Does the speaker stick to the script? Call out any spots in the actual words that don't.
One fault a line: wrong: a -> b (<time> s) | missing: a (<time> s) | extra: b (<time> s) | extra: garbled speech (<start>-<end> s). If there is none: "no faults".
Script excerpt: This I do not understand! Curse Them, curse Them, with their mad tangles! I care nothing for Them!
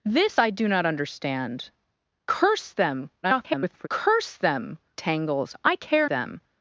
extra: garbled speech (3.2-3.9 s)
missing: with their mad (4.8 s)
missing: nothing for (6.1 s)